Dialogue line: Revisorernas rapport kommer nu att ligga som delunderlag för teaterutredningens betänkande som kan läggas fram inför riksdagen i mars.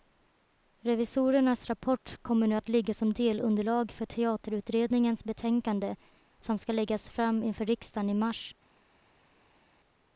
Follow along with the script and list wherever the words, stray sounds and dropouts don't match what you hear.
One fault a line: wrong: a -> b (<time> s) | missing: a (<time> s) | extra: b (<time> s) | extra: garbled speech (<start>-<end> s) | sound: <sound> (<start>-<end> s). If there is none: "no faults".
wrong: kan -> ska (6.6 s)